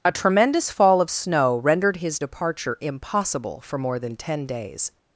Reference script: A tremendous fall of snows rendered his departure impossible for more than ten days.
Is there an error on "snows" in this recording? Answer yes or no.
yes